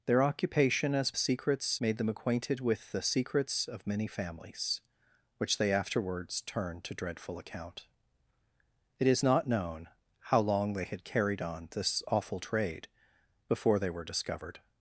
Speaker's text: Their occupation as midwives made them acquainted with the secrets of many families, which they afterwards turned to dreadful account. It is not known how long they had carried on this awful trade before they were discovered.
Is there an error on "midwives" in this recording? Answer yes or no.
yes